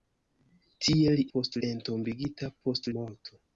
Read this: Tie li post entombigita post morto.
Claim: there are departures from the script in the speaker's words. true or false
false